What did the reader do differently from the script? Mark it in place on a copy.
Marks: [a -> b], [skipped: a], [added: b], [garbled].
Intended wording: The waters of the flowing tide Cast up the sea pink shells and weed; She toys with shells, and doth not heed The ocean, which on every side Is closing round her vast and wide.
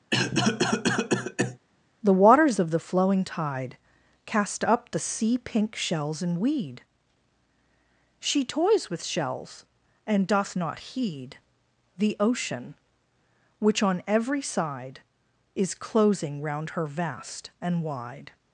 The waters of the flowing tide Cast up the sea pink shells and weed; She toys with shells, and doth not heed The ocean, which on every side Is closing round her vast and wide.